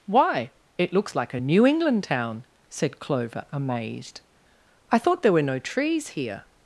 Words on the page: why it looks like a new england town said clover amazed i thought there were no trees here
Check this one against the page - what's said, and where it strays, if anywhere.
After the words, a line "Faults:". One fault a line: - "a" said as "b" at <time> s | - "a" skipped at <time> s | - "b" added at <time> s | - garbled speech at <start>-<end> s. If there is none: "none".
why it looks like a new england town said clover amazed i thought there were no trees here
Faults:
none